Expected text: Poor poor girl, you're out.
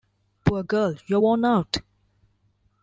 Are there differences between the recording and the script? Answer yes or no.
yes